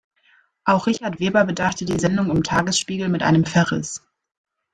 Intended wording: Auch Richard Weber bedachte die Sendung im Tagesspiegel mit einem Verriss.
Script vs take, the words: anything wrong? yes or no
no